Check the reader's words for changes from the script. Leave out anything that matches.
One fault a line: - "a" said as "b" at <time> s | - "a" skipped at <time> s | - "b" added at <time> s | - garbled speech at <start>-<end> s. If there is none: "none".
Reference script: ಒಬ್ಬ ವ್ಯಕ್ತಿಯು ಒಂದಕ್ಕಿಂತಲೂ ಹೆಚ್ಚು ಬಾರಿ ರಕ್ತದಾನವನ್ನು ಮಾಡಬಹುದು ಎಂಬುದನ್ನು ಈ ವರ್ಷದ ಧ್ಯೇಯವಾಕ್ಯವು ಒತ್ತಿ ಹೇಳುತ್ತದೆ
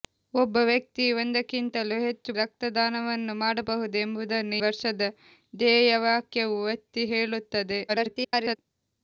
- "ಬಾರಿ" skipped at 2.3 s
- "ಈ" skipped at 4.6 s
- garbled speech at 7.9-8.6 s